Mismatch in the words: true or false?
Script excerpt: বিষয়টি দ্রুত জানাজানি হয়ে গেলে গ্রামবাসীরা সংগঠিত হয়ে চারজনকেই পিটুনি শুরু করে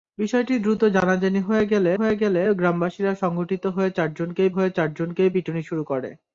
true